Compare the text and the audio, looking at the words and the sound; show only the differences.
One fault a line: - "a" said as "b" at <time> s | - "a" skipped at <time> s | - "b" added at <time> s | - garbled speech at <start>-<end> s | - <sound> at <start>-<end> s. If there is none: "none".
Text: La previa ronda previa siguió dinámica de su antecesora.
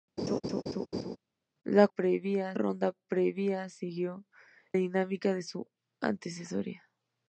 - laugh at 0.2-1.2 s